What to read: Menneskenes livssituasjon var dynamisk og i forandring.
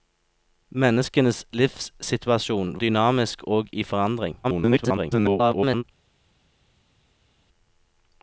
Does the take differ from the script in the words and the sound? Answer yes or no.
yes